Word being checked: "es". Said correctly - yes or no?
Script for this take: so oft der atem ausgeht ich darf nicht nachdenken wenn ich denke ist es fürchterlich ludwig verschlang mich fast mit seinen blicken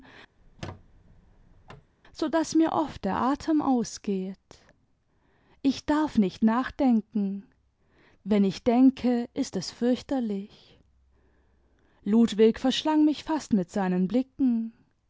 yes